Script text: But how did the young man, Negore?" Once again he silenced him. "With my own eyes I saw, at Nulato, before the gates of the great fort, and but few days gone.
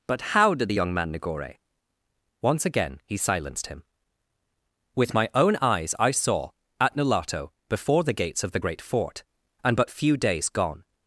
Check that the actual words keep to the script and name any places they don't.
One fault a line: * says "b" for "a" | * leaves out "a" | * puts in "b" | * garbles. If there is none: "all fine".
all fine